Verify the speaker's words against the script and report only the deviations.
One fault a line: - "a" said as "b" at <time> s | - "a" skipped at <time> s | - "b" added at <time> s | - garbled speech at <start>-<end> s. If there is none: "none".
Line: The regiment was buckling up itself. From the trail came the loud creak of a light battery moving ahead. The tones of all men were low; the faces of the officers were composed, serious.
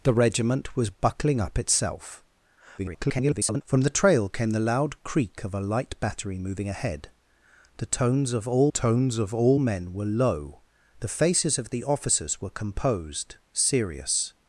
- garbled speech at 2.8-3.6 s
- "tones of all" added at 8.7 s